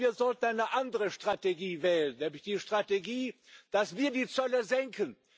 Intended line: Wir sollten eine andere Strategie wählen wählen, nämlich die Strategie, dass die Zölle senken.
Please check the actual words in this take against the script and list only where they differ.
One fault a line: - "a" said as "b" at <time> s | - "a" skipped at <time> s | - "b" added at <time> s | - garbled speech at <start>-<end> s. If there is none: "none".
- "wählen" skipped at 2.2 s
- "wir" added at 4.0 s